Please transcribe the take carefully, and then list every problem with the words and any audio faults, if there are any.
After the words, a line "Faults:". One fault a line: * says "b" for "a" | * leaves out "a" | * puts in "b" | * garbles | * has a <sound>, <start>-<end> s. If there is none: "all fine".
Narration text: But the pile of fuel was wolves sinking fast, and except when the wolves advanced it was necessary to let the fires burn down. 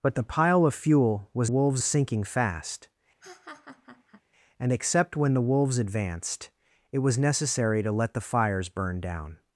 But the pile of fuel was wolves sinking fast, and except when the wolves advanced it was necessary to let the fires burn down.
Faults:
* has a laugh, 3.2-4.2 s